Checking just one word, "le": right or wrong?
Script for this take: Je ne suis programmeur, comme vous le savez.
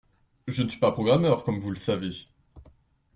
right